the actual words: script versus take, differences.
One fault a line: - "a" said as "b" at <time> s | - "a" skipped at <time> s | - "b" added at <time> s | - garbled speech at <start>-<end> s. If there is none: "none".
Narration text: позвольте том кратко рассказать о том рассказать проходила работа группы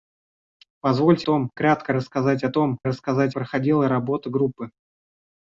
none